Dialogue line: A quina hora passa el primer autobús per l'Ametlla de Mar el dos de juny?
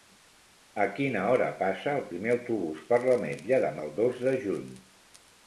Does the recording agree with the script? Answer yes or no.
no